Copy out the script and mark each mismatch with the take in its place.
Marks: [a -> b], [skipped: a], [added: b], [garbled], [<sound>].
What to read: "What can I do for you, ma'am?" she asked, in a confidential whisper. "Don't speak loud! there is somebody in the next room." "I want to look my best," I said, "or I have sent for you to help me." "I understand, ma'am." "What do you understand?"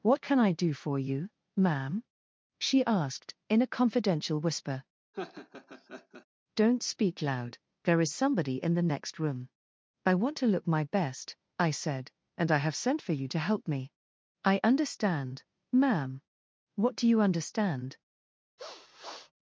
"What can I do for you, ma'am?" she asked, in a confidential whisper. [laugh] "Don't speak loud! there is somebody in the next room." "I want to look my best," I said, ["or -> and] I have sent for you to help me." "I understand, ma'am." "What do you understand?" [sniff]